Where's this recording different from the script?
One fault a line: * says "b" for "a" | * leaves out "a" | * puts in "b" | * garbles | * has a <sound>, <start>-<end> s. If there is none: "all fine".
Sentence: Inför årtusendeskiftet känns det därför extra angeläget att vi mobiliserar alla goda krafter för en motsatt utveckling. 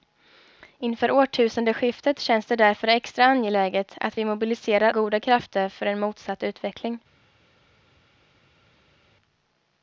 * leaves out "alla"